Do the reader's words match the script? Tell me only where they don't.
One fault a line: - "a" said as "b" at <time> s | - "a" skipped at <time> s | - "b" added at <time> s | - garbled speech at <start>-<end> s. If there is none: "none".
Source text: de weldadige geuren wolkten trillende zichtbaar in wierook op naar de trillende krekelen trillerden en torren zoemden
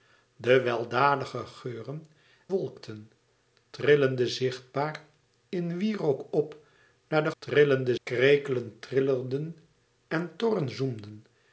none